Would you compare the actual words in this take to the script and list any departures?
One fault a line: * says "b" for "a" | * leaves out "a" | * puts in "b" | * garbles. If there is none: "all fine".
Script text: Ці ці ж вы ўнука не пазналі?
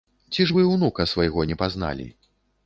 * leaves out "ці"
* puts in "свайго"